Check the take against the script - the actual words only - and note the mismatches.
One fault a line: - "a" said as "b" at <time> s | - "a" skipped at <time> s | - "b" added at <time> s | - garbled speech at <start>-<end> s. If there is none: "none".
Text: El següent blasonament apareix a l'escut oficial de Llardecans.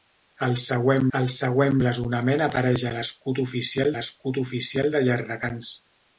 - "el següent" added at 1.2 s
- "l'escut oficial" added at 4.0 s